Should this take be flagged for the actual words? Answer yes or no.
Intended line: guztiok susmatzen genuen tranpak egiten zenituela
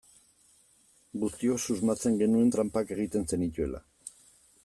no